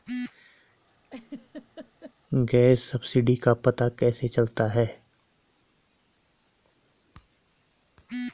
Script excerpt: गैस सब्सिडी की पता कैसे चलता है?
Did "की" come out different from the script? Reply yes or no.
yes